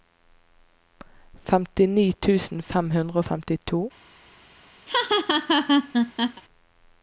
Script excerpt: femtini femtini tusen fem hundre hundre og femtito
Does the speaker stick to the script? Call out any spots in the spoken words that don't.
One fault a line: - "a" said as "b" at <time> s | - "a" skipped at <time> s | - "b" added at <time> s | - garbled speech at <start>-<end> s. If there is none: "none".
- "femtini" skipped at 2.1 s
- "hundre" skipped at 3.2 s